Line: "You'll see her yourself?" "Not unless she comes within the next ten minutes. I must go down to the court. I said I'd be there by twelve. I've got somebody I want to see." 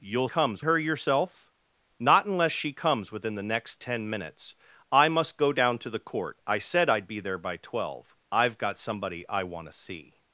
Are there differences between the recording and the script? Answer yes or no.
yes